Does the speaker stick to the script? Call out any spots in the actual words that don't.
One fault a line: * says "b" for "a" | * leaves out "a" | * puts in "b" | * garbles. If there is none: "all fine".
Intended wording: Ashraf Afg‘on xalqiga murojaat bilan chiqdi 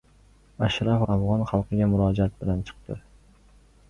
all fine